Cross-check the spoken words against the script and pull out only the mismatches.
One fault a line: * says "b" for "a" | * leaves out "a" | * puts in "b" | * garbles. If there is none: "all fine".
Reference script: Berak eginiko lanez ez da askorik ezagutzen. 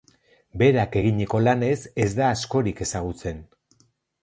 all fine